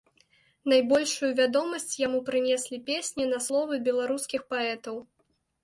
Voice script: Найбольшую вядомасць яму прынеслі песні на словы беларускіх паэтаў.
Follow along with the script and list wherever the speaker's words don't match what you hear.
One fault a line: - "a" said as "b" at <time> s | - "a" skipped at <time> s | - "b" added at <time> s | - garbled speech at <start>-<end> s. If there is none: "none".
none